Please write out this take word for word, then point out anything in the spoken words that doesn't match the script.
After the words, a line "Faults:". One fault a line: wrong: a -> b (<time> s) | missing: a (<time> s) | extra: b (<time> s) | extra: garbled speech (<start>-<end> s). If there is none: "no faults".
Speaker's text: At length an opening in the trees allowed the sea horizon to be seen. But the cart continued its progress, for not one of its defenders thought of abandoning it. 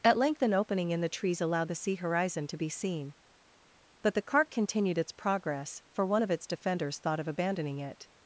At length an opening in the trees allowed the sea horizon to be seen. But the cart continued its progress, for one of its defenders thought of abandoning it.
Faults:
missing: not (6.1 s)